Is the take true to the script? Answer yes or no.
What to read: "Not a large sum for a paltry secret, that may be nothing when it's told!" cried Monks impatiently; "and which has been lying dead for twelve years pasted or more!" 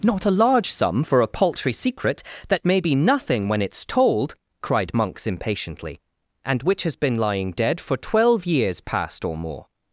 no